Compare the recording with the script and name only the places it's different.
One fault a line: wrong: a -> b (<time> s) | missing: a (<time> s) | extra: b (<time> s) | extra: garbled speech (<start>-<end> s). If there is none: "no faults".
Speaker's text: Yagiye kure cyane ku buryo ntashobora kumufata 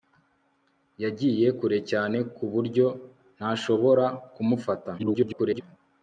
extra: garbled speech (5.0-5.6 s)